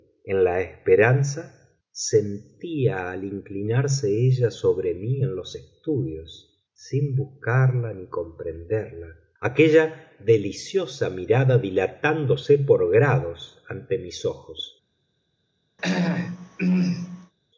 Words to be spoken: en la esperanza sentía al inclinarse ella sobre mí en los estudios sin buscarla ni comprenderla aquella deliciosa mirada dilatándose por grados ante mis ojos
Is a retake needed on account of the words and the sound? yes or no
yes